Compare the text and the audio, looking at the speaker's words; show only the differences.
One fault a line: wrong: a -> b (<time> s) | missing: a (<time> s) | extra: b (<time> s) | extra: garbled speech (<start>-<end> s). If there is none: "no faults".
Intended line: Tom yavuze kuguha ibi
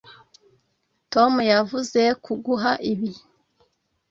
no faults